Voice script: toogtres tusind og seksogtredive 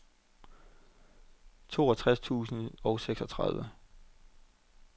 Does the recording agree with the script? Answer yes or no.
yes